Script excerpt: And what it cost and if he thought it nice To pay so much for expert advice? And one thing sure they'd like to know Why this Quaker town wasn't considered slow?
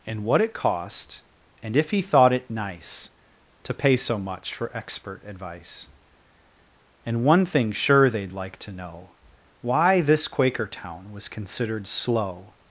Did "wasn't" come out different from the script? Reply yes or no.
yes